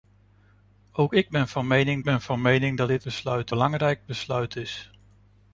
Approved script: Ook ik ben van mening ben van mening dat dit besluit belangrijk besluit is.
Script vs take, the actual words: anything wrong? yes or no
no